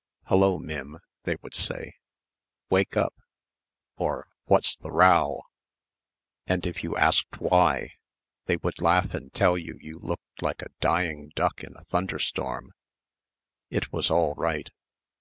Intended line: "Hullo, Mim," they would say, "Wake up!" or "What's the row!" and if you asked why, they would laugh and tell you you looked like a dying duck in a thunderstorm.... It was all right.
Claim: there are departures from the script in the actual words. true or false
false